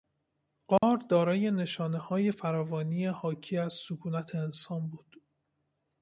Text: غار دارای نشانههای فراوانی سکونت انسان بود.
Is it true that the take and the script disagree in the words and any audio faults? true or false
true